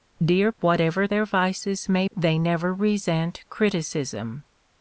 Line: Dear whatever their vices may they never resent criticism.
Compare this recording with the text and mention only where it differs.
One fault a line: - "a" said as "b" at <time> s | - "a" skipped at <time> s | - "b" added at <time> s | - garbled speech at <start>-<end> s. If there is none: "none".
none